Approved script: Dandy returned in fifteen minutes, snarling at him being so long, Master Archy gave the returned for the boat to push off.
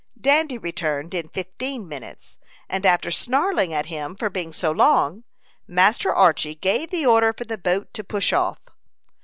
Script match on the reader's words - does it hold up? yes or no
no